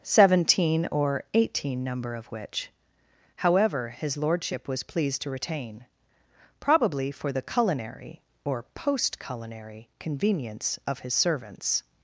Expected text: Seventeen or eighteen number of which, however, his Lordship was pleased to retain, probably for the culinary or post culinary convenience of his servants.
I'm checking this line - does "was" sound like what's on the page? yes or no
yes